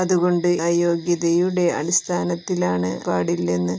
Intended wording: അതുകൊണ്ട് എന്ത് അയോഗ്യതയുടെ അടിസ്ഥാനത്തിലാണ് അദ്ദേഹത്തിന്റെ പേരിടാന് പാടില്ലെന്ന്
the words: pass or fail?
fail